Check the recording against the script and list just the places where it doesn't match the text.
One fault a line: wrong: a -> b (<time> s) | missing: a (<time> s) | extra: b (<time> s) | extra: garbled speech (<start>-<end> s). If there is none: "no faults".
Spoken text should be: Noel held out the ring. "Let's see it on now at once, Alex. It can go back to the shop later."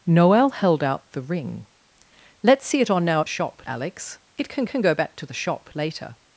wrong: once -> shop (3.3 s)
extra: can (4.6 s)